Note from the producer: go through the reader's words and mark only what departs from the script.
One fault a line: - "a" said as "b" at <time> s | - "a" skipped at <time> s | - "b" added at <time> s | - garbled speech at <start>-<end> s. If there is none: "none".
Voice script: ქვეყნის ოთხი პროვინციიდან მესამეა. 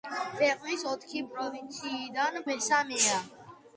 none